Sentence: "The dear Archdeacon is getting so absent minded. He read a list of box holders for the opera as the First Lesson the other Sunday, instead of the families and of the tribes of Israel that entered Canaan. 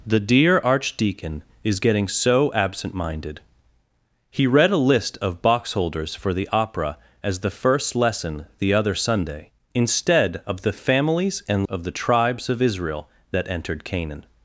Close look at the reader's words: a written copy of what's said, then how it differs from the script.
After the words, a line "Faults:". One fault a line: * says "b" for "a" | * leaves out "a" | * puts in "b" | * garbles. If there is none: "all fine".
"The dear Archdeacon is getting so absent minded. He read a list of box holders for the opera as the First Lesson the other Sunday, instead of the families and of the tribes of Israel that entered Canaan.
Faults:
all fine